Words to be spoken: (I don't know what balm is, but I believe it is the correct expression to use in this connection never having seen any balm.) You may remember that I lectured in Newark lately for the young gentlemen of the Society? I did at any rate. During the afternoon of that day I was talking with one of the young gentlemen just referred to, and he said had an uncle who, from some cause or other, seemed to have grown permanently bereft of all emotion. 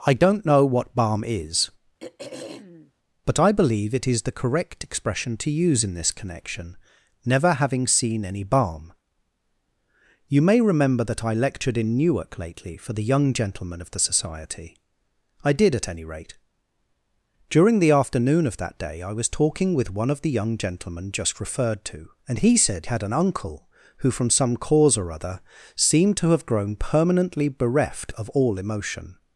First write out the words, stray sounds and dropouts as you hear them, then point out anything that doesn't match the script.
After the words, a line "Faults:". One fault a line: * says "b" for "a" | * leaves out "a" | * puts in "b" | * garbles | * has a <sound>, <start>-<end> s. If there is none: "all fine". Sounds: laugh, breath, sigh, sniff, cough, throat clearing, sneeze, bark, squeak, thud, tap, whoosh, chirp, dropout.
(I don't know what balm is, but I believe it is the correct expression to use in this connection never having seen any balm.) You may remember that I lectured in Newark lately for the young gentlemen of the Society? I did at any rate. During the afternoon of that day I was talking with one of the young gentlemen just referred to, and he said had an uncle who, from some cause or other, seemed to have grown permanently bereft of all emotion.
Faults:
* has a throat clearing, 2.0-2.9 s